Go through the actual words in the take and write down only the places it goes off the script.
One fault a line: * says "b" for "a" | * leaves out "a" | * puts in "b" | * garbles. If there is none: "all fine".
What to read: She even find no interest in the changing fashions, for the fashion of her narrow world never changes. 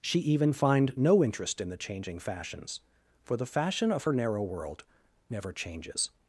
all fine